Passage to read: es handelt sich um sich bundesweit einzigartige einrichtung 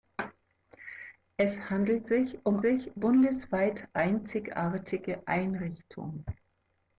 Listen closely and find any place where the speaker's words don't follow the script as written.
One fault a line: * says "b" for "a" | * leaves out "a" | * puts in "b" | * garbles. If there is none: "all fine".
all fine